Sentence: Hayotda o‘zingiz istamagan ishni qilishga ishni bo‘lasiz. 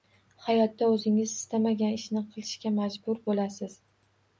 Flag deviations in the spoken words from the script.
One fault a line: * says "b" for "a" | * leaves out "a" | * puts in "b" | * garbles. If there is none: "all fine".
* says "majbur" for "ishni"